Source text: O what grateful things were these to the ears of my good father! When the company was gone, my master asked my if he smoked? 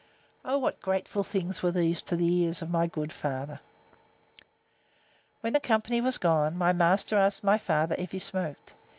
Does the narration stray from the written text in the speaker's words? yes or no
yes